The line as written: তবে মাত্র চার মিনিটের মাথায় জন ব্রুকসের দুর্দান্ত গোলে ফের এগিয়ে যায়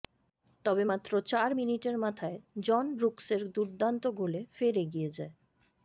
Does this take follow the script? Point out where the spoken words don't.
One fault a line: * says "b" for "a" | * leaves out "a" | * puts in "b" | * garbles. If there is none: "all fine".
all fine